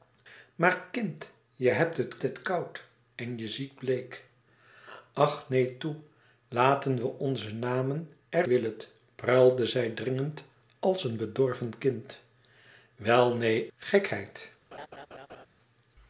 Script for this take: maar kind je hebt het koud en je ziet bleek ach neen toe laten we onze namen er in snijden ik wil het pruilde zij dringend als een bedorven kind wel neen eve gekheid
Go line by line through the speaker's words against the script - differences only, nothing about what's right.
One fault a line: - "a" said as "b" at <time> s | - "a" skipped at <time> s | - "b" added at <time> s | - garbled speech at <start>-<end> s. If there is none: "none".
- "het" added at 2.2 s
- "in snijden ik" skipped at 8.5 s
- "eve" skipped at 13.7 s